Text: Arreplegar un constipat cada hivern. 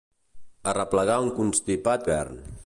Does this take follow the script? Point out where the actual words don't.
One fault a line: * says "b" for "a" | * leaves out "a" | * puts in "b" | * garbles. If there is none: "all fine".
* leaves out "cada"